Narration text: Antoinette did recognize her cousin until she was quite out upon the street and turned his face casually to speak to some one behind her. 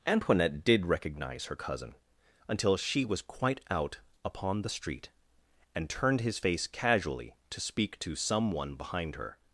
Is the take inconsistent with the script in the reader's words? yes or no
no